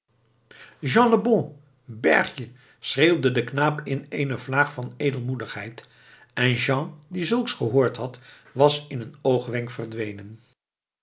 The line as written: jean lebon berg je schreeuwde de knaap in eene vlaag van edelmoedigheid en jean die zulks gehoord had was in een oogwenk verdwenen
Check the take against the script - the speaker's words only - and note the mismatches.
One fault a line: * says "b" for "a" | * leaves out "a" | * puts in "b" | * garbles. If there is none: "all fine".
all fine